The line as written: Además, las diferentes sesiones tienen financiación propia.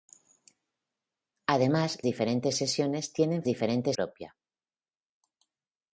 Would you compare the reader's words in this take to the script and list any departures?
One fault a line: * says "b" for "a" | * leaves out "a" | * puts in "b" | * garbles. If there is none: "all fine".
* leaves out "las"
* says "diferentes" for "financiación"